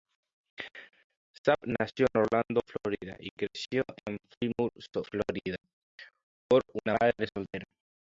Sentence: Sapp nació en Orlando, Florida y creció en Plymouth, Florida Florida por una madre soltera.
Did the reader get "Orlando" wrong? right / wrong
right